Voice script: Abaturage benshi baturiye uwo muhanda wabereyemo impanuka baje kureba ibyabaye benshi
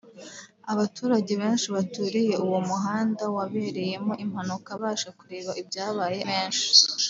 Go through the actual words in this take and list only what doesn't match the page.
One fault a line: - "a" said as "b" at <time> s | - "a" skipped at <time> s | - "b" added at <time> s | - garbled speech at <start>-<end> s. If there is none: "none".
none